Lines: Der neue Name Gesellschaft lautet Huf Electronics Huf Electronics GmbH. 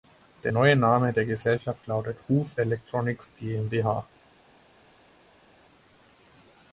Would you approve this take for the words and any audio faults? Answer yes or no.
no